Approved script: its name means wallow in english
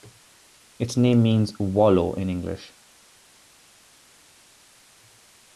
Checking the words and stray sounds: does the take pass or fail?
pass